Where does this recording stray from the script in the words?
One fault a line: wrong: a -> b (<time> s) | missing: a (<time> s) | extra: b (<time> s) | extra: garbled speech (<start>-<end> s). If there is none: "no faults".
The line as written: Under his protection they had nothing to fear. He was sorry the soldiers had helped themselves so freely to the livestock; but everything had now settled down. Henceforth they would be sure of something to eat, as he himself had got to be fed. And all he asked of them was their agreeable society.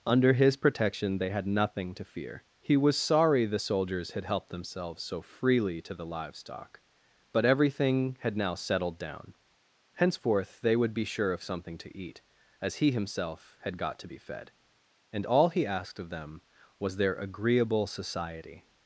no faults